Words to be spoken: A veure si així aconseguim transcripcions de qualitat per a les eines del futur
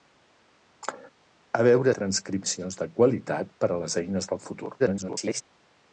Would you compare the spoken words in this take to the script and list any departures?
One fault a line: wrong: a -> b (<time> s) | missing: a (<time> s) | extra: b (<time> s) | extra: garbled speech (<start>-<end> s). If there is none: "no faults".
missing: si així aconseguim (1.9 s)
extra: garbled speech (4.8-5.4 s)